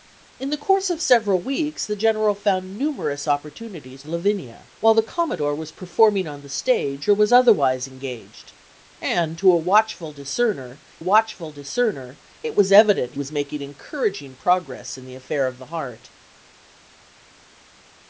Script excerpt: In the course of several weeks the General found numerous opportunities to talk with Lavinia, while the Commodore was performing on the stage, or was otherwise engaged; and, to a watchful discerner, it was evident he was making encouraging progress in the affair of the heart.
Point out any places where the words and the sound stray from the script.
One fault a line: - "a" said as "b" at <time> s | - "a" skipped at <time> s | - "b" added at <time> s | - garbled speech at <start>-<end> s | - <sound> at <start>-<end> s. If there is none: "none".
- "to talk with" skipped at 4.0 s
- "watchful discerner" added at 11.0 s
- "he" skipped at 13.1 s